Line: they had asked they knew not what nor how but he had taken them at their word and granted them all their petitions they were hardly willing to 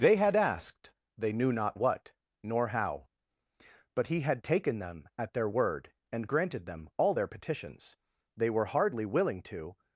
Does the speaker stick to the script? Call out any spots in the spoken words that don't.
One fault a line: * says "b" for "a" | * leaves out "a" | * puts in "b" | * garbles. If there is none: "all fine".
all fine